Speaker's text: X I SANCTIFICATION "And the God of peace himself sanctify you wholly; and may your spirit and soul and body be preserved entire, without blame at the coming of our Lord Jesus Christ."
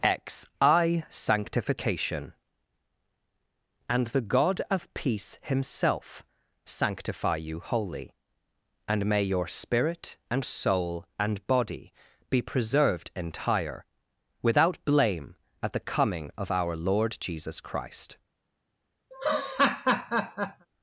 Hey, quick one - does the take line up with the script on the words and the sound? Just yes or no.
no